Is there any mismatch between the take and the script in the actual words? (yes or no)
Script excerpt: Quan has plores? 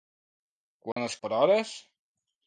no